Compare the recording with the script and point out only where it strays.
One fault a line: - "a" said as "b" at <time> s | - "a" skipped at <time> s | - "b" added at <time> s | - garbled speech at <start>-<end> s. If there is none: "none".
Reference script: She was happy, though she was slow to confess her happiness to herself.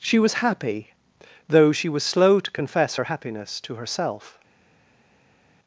none